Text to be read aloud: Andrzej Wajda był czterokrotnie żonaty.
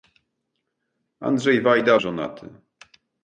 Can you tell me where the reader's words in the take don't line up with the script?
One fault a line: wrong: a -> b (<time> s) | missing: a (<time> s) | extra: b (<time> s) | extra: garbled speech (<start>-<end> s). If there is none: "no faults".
missing: był czterokrotnie (2.0 s)